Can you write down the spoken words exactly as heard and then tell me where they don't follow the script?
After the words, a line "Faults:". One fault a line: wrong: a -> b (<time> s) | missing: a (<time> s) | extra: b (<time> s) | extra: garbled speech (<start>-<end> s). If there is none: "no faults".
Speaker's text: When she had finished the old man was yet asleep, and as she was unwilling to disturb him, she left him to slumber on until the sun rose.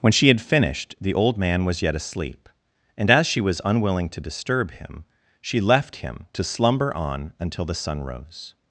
When she had finished the old man was yet asleep, and as she was unwilling to disturb him, she left him to slumber on until the sun rose.
Faults:
no faults